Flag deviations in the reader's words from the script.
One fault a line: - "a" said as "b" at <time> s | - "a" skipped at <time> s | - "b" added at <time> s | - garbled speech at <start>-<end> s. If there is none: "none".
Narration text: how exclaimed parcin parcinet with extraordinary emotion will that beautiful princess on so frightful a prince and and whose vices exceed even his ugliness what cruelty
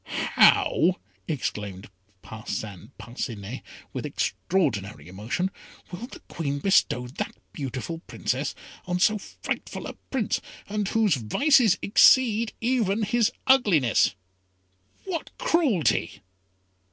- "the queen bestow" added at 6.0 s
- "and" skipped at 10.9 s